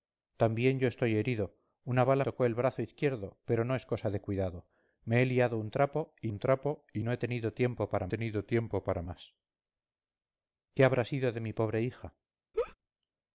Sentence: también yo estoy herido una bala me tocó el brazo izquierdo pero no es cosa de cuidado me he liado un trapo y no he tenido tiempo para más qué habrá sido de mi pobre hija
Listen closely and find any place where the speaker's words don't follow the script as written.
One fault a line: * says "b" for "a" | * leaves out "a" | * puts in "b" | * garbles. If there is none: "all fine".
* leaves out "me"
* puts in "un trapo y"
* puts in "tenido tiempo para"